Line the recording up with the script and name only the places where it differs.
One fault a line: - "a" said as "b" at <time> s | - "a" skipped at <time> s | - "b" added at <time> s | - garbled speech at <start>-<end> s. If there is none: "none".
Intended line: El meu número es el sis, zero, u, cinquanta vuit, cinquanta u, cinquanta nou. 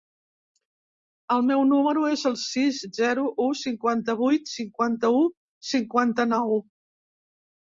none